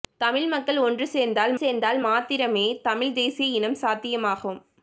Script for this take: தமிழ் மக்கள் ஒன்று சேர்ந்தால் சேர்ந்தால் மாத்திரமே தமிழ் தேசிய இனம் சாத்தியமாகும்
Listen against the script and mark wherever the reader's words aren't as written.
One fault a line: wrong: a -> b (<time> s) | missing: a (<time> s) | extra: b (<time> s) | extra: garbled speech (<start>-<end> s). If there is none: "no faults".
no faults